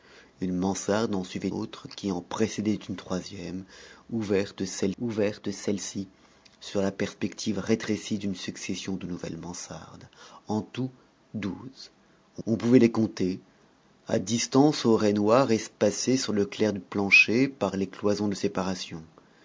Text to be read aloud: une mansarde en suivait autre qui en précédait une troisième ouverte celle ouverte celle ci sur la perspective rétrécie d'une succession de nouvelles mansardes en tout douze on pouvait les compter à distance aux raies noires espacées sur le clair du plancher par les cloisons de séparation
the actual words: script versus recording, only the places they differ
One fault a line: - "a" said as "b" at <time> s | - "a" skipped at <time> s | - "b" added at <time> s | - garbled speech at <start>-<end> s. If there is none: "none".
none